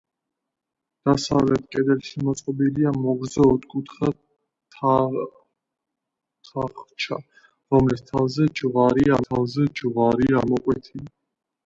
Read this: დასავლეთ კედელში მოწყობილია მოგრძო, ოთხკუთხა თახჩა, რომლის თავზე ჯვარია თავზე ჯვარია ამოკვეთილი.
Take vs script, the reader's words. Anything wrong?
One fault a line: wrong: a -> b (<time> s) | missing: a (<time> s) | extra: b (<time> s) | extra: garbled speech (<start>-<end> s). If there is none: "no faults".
no faults